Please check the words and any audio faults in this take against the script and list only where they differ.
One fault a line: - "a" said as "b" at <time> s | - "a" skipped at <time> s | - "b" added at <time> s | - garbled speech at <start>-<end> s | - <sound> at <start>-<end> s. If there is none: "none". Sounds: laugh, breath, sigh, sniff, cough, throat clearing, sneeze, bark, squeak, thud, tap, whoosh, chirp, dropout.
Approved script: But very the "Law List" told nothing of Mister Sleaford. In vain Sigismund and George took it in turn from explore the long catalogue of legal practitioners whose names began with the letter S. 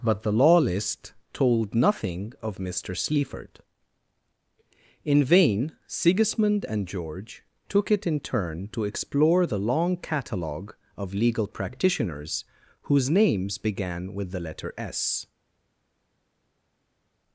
- "very" skipped at 0.2 s
- "from" said as "to" at 8.7 s